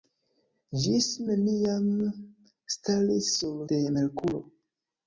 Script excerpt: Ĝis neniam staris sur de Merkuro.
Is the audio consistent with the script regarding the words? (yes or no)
yes